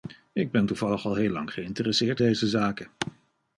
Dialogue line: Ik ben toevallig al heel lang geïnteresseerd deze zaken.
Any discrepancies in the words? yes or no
no